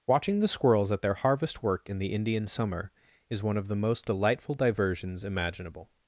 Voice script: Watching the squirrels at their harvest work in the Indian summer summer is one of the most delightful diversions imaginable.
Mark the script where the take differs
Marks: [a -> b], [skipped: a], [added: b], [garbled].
Watching the squirrels at their harvest work in the Indian summer [skipped: summer] is one of the most delightful diversions imaginable.